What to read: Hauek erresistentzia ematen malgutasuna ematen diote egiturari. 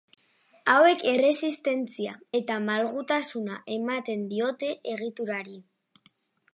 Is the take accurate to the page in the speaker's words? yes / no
no